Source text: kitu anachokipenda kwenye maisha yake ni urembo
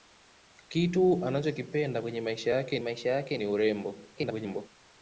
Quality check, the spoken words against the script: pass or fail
fail